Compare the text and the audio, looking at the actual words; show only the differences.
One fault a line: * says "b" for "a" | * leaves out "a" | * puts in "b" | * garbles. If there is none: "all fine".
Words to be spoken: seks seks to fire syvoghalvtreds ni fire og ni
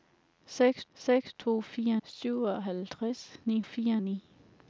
all fine